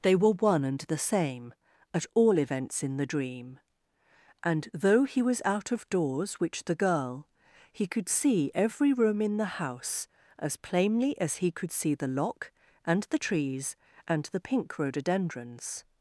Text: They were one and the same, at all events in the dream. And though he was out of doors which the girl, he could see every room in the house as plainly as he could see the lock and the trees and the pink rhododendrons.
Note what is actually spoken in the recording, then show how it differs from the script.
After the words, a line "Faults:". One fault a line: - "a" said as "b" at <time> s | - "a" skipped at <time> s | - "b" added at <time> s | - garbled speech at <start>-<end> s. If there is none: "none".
They were one and the same, at all events in the dream. And though he was out of doors which the girl, he could see every room in the house as plainly as he could see the lock and the trees and the pink rhododendrons.
Faults:
none